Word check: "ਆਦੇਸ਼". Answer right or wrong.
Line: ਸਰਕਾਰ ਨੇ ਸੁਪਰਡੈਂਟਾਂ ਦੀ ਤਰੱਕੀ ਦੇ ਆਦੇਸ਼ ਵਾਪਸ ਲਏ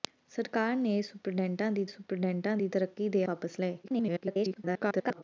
wrong